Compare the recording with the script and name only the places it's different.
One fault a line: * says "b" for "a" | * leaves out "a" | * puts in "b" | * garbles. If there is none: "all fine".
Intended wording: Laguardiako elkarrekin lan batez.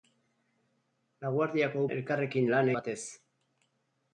all fine